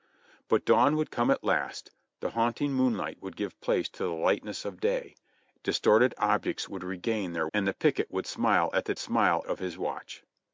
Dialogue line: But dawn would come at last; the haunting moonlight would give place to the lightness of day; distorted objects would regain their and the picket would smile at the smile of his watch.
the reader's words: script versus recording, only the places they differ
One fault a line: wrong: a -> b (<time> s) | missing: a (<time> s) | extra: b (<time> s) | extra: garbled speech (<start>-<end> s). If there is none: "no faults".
no faults